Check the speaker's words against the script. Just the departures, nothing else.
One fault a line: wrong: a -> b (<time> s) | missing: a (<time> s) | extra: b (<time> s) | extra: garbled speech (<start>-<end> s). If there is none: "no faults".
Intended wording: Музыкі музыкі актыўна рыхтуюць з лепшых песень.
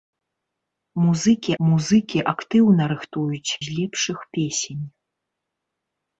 no faults